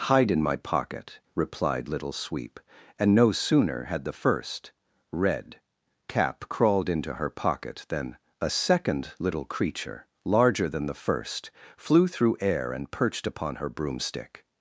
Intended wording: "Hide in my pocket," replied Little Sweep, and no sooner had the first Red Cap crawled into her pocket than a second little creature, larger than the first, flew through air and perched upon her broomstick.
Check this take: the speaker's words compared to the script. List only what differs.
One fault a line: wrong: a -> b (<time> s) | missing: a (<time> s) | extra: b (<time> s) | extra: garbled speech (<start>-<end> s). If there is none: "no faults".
no faults